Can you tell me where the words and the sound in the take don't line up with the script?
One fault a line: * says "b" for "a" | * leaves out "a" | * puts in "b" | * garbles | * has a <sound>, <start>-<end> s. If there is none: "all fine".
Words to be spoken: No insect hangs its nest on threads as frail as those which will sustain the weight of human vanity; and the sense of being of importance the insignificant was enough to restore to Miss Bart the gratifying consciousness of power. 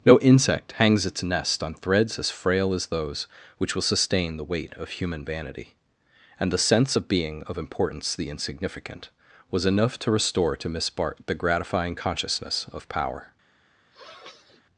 * has a sniff, 13.9-14.6 s